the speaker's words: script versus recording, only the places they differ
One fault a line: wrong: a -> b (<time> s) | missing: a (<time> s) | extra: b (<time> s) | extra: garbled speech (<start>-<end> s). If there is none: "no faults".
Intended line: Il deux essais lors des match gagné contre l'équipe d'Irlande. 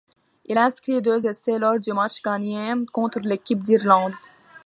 extra: inscrit (0.6 s)
wrong: des -> du (1.8 s)